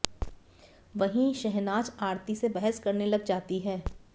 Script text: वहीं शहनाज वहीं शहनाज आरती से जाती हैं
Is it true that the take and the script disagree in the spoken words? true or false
true